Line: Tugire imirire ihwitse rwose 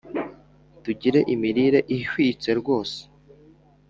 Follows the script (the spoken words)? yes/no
yes